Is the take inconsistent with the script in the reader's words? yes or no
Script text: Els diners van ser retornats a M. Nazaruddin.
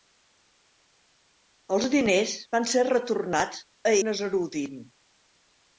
yes